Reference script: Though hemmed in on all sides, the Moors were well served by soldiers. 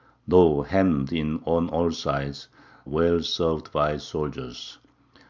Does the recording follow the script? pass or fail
fail